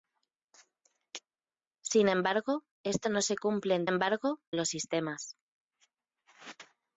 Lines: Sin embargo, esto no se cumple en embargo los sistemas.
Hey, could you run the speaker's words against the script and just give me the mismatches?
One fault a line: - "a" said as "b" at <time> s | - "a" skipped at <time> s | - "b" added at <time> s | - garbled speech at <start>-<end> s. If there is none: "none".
none